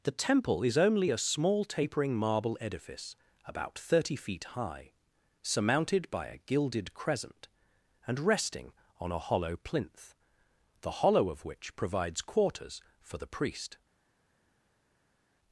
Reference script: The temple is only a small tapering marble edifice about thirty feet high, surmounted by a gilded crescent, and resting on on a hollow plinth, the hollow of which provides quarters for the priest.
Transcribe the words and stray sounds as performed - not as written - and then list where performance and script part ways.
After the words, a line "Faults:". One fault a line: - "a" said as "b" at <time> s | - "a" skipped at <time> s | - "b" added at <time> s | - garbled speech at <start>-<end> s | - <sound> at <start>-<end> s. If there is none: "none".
The temple is only a small tapering marble edifice about thirty feet high, surmounted by a gilded crescent, and resting on a hollow plinth, the hollow of which provides quarters for the priest.
Faults:
- "on" skipped at 9.1 s